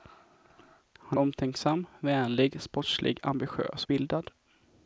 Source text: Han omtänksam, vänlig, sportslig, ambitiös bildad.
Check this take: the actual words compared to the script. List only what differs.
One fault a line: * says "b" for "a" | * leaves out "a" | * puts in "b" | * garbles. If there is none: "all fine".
all fine